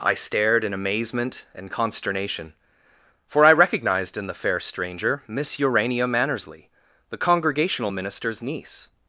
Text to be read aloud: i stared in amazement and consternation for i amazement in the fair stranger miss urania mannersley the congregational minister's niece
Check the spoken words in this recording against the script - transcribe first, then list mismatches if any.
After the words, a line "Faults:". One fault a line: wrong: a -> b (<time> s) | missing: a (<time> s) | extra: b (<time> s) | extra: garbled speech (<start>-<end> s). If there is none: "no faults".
i stared in amazement and consternation for i recognized in the fair stranger miss urania mannersley the congregational minister's niece
Faults:
wrong: amazement -> recognized (3.5 s)